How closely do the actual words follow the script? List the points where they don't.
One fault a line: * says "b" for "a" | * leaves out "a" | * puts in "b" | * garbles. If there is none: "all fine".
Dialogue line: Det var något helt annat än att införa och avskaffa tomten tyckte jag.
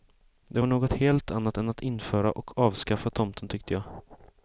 all fine